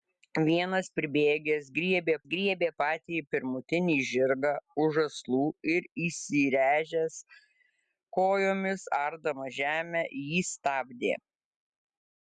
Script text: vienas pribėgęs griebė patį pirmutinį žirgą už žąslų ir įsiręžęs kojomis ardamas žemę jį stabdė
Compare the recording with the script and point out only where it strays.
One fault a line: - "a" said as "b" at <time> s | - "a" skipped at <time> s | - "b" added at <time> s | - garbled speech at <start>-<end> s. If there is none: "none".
- "griebė" added at 2.3 s